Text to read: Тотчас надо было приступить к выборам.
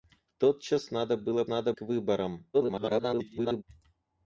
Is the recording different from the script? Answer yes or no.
yes